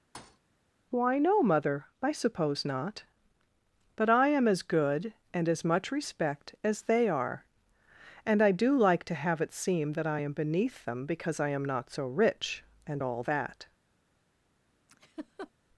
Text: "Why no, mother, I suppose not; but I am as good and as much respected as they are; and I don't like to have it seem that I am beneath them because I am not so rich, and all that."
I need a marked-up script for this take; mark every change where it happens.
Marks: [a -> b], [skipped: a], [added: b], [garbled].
"Why no, mother, I suppose not; but I am as good and as much [respected -> respect] as they are; and I [don't -> do] like to have it seem that I am beneath them because I am not so rich, and all that."